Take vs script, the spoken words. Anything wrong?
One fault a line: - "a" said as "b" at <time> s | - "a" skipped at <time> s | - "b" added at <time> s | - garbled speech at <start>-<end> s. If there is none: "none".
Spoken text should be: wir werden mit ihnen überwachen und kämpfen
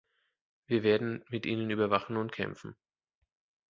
none